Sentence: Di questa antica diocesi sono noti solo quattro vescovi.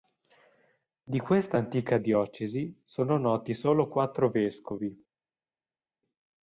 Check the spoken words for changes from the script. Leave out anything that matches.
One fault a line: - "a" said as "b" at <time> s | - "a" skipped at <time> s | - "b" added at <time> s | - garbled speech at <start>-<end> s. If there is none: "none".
none